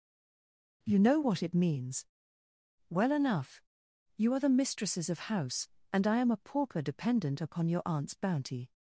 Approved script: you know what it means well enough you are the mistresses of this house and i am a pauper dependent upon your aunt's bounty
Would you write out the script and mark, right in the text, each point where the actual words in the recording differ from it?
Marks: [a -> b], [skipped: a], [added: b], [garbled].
you know what it means well enough you are the mistresses of [skipped: this] house and i am a pauper dependent upon your aunt's bounty